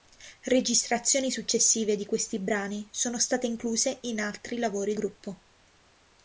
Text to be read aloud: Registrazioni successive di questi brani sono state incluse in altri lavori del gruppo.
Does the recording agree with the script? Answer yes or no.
no